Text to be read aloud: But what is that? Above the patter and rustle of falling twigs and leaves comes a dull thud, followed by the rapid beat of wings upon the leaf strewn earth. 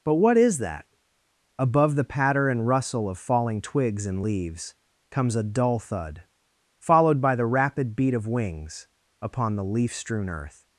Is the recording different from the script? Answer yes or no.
no